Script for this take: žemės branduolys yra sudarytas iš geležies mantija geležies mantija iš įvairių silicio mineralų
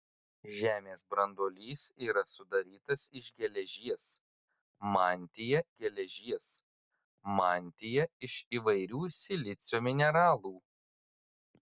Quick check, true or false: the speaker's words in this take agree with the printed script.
true